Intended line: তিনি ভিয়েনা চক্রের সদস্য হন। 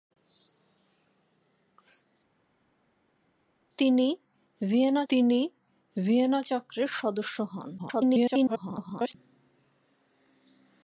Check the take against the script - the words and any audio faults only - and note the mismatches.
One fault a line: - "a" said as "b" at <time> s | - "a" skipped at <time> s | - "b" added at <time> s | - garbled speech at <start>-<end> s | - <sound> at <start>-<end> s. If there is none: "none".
- "তিনি ভিয়েনা" added at 5.1 s
- garbled speech at 7.8-9.1 s